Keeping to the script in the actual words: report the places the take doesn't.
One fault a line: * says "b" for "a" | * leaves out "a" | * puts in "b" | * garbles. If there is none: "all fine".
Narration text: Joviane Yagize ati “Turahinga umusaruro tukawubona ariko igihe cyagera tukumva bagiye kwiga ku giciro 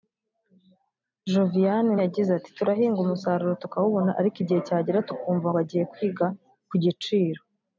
all fine